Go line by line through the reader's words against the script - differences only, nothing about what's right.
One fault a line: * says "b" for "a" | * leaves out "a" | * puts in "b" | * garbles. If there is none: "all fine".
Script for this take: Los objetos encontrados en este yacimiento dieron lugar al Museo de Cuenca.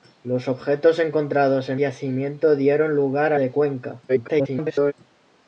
* leaves out "este"
* leaves out "al Museo"
* garbles